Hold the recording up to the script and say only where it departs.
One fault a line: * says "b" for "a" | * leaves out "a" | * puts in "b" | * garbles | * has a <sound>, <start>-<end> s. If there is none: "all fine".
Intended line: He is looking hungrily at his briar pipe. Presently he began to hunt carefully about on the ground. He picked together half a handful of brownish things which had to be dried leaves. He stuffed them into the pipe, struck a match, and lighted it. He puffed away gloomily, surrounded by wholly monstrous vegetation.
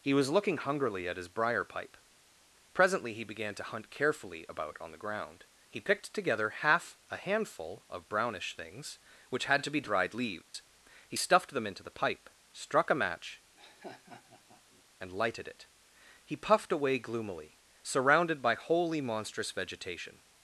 * says "was" for "is"
* has a dropout, 10.4-10.5 s
* has a laugh, 13.6-14.8 s